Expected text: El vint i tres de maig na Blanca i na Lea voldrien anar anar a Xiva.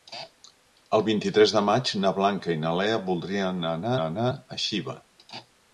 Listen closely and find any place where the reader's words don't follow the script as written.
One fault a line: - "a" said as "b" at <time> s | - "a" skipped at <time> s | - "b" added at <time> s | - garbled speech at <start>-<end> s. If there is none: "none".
none